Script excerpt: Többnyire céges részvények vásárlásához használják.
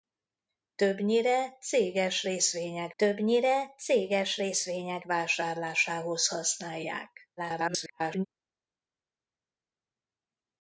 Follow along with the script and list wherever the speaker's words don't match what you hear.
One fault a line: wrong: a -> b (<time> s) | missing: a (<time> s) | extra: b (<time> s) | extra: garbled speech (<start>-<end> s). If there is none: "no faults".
extra: többnyire céges részvények (3.0 s)
extra: garbled speech (7.4-8.3 s)